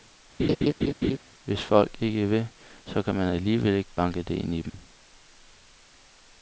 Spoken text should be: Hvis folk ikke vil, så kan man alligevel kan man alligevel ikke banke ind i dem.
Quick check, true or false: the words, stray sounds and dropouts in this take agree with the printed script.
false